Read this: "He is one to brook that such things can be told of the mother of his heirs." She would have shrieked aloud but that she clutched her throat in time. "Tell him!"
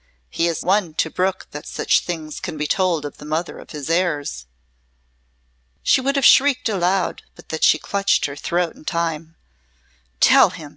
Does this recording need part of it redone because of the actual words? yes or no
no